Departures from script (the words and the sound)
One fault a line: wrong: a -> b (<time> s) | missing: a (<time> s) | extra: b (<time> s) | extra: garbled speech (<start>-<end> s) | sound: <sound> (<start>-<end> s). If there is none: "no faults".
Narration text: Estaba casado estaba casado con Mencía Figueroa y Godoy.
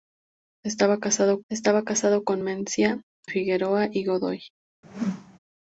sound: whoosh (4.8-5.4 s)